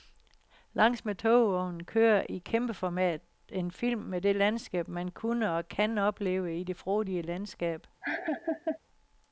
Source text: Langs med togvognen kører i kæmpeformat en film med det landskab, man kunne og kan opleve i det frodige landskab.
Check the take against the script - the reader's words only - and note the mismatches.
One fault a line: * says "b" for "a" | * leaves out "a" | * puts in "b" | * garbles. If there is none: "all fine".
all fine